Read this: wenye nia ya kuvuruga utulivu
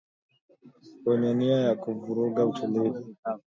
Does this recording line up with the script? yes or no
yes